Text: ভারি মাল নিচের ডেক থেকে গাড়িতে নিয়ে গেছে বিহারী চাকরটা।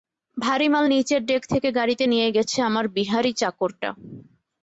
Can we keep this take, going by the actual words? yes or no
no